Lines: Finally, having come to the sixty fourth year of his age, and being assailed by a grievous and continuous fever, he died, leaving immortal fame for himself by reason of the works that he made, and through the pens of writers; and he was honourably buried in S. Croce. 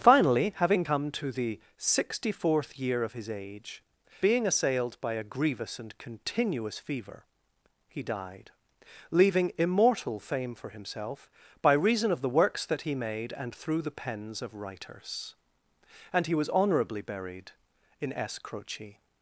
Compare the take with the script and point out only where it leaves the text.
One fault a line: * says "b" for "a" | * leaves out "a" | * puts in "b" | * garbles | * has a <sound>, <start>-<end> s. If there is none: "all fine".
* leaves out "and"